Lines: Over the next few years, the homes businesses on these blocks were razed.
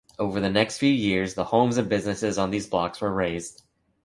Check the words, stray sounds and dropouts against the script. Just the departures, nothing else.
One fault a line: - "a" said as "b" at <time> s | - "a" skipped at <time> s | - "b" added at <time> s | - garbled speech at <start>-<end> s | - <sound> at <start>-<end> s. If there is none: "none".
- "and" added at 1.8 s